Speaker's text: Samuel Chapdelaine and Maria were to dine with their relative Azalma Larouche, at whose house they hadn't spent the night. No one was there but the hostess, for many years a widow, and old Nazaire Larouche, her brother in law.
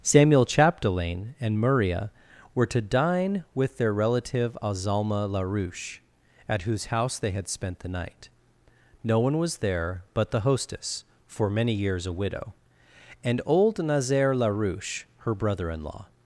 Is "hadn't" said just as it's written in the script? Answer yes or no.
no